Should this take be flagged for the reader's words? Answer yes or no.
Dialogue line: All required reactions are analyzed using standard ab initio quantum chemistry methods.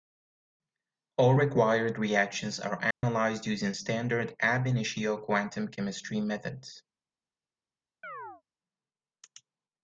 no